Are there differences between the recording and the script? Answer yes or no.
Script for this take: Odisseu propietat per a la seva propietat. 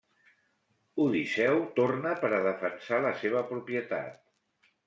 yes